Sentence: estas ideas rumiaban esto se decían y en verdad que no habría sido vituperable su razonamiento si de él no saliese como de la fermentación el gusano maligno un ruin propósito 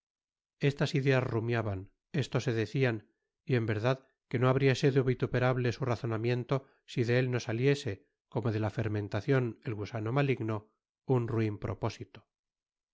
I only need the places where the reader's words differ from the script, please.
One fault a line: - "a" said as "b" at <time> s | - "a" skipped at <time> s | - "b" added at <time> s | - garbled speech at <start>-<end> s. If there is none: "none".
none